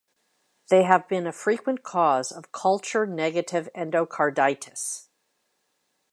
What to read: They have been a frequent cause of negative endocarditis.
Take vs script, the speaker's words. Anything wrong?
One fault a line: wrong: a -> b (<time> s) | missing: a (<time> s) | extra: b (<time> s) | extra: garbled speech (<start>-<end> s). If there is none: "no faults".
extra: culture (2.5 s)